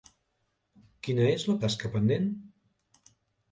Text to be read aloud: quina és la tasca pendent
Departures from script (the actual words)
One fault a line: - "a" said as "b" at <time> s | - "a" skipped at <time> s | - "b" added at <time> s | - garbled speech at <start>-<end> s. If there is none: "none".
none